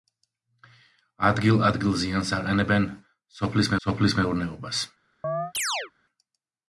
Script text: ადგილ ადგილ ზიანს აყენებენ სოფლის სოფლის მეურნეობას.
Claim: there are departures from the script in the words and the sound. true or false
true